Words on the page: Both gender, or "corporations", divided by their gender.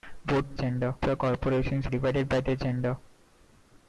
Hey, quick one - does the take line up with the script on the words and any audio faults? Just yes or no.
yes